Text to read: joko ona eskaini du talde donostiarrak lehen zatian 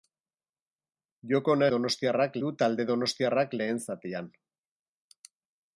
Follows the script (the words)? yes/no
no